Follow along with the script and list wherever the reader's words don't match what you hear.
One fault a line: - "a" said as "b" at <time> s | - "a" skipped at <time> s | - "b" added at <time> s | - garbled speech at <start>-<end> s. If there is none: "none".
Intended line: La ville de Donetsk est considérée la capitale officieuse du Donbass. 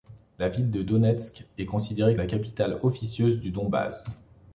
none